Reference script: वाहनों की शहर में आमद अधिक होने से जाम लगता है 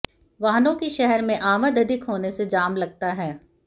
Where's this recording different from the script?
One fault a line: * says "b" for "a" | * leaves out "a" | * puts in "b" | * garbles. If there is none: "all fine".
all fine